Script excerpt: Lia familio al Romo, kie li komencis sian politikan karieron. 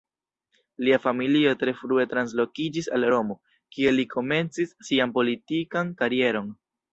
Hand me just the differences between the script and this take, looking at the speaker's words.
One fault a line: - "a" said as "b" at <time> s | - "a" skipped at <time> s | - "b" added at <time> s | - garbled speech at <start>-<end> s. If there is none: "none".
- "tre frue translokiĝis" added at 1.6 s